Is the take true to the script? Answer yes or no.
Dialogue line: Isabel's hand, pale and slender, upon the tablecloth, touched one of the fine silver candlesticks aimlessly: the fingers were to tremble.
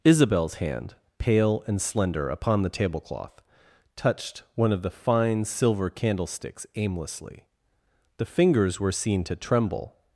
no